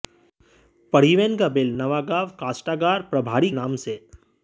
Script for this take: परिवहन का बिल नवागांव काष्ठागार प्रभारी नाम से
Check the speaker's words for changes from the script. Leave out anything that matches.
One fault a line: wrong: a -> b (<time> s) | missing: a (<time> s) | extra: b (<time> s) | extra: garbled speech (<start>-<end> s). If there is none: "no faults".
no faults